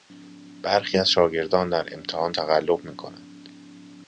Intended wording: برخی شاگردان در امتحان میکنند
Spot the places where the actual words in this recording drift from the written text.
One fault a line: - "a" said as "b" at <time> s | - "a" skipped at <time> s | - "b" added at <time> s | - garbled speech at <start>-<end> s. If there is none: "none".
- "از" added at 0.9 s
- "تقلب" added at 2.3 s